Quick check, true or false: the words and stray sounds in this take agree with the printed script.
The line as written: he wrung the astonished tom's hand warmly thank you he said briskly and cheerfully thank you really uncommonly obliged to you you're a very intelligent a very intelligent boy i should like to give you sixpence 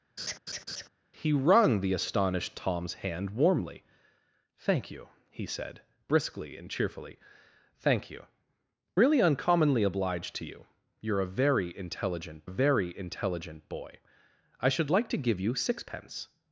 false